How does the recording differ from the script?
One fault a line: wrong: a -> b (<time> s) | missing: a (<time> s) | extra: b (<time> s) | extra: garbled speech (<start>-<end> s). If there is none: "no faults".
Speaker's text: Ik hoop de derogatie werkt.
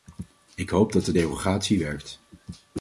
extra: dat (0.9 s)